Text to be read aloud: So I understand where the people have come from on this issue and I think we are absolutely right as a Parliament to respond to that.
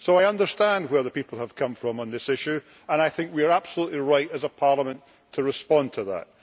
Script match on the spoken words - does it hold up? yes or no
yes